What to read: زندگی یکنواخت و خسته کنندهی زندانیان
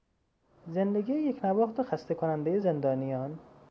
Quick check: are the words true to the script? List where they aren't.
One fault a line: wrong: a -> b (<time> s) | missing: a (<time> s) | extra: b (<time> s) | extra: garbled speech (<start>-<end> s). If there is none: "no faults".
no faults